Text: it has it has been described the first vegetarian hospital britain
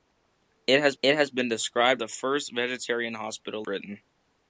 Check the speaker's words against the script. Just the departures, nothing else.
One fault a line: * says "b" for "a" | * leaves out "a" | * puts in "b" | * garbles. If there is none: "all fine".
all fine